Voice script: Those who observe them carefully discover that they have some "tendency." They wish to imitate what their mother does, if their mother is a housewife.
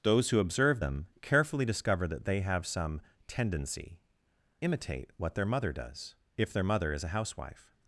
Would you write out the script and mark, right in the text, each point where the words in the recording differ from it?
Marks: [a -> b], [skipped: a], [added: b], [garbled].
Those who observe them carefully discover that they have some "tendency." [skipped: They wish to] imitate what their mother does, if their mother is a housewife.